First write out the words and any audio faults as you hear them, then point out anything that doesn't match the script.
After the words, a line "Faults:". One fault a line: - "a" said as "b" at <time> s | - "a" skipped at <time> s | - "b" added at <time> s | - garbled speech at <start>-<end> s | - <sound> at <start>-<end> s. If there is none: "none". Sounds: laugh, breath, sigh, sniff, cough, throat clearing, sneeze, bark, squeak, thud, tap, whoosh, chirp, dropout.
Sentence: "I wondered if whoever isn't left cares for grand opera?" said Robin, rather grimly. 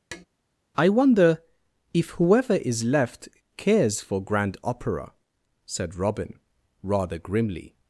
"I wonder if whoever is left cares for grand opera?" said Robin, rather grimly.
Faults:
- tap at 0.1-0.3 s
- "wondered" said as "wonder" at 0.9 s
- "isn't" said as "is" at 2.6 s